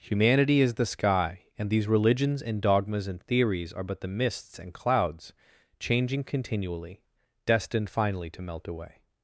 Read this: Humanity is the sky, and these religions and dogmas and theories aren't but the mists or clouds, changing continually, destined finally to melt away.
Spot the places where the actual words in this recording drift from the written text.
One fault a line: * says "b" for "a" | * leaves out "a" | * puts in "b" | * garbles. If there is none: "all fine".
* says "are" for "aren't"
* says "and" for "or"